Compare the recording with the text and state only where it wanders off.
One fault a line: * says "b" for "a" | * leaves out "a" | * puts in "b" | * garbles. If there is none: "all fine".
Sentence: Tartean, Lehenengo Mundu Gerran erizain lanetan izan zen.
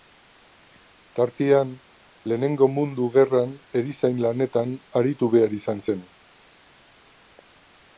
* puts in "aritu behar"